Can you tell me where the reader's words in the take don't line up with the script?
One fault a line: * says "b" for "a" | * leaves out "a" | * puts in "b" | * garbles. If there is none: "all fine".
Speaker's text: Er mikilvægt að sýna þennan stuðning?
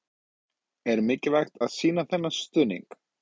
all fine